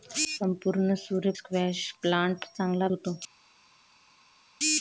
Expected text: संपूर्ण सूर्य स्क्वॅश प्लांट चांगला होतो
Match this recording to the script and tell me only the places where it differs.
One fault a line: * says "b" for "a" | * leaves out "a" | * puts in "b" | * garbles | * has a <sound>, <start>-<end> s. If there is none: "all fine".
all fine